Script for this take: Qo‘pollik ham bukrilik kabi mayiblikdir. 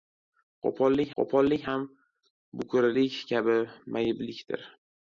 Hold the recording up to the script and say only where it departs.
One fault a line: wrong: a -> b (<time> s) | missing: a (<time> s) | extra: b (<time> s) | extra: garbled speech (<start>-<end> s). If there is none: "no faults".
extra: qo‘pollik (1.2 s)